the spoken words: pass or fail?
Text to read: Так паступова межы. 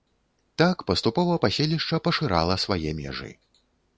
fail